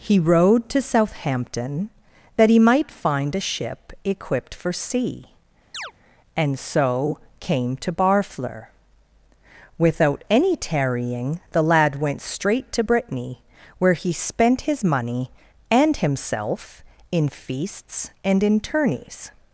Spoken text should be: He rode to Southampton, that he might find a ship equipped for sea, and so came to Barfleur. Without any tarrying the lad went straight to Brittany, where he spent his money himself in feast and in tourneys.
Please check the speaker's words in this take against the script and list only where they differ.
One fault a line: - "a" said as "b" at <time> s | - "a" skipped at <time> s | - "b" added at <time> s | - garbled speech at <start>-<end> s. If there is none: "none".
- "and" added at 15.7 s
- "feast" said as "feasts" at 17.3 s